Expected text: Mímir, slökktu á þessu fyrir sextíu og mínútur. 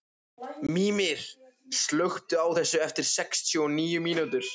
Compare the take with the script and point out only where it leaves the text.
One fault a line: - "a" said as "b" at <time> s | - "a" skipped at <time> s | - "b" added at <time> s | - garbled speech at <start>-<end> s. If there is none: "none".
- "fyrir" said as "eftir" at 2.9 s
- "níu" added at 3.8 s